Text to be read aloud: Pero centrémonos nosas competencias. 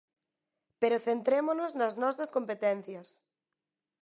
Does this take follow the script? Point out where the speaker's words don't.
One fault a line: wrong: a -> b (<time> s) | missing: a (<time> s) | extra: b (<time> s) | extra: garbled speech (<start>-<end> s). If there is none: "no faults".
extra: nas (1.8 s)